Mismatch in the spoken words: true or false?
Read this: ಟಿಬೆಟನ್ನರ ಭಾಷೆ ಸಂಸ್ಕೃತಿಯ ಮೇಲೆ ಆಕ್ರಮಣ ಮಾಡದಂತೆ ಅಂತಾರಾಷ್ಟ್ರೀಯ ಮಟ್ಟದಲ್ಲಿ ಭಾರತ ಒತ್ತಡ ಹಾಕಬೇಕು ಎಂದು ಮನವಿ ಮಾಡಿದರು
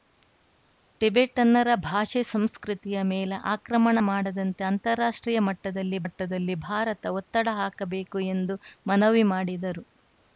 true